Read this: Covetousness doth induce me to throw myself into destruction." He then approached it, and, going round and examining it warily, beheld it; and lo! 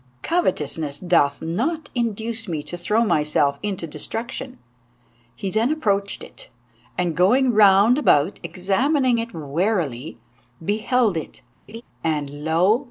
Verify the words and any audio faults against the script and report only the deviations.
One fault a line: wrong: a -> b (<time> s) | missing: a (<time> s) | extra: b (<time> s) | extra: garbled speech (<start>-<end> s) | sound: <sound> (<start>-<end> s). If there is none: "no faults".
extra: not (1.4 s)
wrong: and -> about (8.0 s)
sound: laugh (11.7-11.8 s)